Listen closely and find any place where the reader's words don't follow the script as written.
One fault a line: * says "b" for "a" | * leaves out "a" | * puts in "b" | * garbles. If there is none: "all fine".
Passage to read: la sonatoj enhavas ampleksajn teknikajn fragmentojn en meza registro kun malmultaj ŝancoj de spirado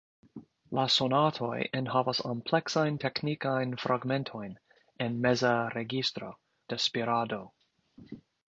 * leaves out "kun malmultaj ŝancoj"